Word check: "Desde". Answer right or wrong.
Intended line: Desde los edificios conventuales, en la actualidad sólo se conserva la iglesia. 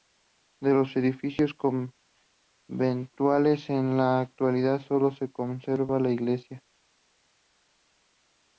wrong